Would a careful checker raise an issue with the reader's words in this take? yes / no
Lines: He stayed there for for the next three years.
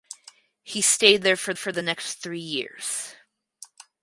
no